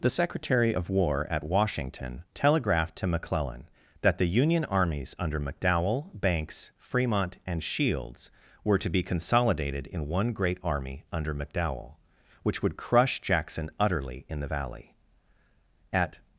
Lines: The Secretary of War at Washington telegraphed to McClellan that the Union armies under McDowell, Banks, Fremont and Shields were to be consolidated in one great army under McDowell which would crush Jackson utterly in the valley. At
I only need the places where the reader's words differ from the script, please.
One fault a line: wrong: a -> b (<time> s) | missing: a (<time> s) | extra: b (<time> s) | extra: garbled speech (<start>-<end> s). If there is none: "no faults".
no faults